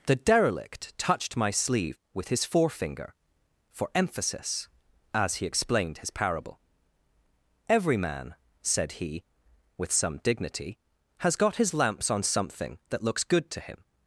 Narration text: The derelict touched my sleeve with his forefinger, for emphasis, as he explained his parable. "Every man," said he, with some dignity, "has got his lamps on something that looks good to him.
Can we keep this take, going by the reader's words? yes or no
yes